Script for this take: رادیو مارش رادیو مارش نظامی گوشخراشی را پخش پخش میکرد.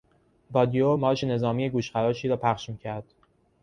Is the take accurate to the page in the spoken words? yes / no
no